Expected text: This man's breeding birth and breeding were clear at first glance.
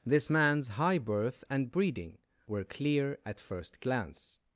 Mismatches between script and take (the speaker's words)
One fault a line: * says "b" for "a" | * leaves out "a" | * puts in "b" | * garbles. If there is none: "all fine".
* says "high" for "breeding"